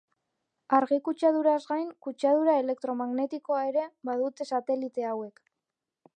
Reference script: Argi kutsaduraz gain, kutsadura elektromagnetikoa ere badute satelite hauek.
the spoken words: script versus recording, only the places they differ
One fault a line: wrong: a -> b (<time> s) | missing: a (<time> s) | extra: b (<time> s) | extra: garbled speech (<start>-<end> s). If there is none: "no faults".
no faults